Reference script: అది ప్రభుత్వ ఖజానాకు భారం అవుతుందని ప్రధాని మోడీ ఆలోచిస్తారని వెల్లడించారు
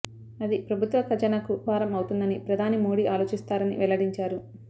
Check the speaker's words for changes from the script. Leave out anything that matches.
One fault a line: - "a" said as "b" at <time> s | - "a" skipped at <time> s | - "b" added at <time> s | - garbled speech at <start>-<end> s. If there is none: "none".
none